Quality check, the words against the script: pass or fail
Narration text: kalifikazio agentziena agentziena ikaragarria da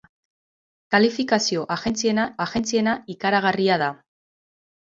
pass